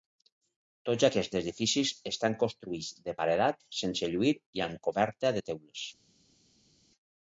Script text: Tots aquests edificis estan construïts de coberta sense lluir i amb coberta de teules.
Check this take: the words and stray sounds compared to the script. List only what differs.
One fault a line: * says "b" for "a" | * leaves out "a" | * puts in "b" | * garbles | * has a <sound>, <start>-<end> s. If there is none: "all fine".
* says "paredat" for "coberta"